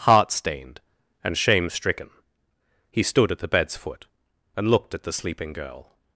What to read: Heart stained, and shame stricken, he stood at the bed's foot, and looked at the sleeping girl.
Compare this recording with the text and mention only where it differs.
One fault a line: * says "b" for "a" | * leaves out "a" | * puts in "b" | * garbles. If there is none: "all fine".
all fine